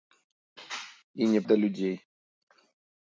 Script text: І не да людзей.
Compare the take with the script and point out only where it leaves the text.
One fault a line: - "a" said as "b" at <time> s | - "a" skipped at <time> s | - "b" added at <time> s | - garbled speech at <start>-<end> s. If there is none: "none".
none